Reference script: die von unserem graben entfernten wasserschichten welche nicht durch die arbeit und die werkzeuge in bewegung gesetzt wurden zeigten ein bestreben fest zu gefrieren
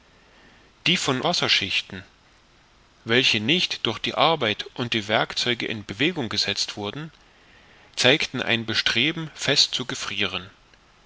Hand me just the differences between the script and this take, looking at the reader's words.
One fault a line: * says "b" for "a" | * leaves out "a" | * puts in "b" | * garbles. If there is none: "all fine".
* leaves out "unserem graben entfernten"